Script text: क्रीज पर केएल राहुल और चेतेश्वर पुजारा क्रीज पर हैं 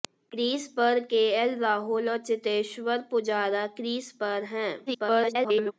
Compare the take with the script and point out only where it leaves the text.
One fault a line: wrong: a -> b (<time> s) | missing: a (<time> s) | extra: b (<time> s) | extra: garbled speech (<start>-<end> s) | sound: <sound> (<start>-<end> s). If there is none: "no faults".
extra: garbled speech (4.9-5.7 s)